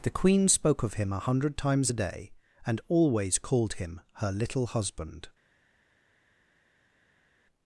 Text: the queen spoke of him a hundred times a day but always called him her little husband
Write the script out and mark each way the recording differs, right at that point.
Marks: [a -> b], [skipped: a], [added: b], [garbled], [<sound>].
the queen spoke of him a hundred times a day [but -> and] always called him her little husband